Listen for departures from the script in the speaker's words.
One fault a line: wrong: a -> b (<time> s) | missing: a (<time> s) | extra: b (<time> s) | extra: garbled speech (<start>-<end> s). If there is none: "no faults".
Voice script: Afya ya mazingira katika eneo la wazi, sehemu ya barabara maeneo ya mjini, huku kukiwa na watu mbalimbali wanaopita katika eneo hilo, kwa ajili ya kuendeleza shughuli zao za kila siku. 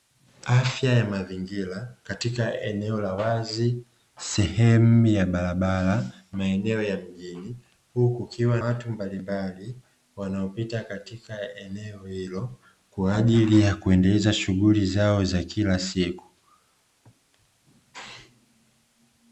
missing: na (8.6 s)